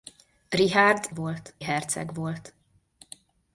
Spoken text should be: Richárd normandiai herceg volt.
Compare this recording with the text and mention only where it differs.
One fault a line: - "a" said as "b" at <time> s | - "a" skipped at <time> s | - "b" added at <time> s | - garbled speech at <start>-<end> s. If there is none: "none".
- "normandiai" said as "volt" at 1.1 s